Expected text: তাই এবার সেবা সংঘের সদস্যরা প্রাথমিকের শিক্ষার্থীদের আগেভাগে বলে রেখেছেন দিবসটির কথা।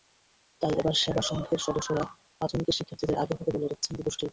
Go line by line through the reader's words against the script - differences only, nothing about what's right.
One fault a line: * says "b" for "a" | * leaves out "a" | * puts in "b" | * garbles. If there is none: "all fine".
all fine